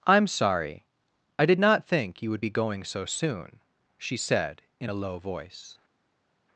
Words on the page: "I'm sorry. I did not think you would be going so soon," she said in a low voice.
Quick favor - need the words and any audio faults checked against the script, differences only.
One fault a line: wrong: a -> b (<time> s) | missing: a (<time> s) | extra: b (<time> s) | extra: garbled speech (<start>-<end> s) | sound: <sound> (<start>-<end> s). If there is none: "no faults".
no faults